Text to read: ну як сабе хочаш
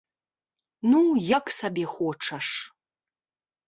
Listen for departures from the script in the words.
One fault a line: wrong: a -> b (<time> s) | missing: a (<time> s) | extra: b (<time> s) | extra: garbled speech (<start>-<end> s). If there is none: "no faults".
no faults